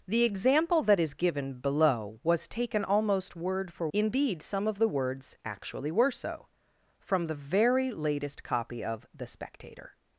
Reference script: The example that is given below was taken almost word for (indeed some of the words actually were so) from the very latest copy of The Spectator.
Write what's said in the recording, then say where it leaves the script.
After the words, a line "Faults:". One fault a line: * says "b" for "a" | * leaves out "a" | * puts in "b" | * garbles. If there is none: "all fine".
The example that is given below was taken almost word for (indeed some of the words actually were so) from the very latest copy of The Spectator.
Faults:
all fine